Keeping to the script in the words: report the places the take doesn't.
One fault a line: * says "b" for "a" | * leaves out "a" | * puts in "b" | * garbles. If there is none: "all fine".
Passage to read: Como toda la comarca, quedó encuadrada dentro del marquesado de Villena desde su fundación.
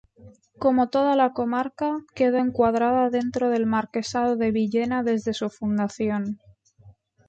all fine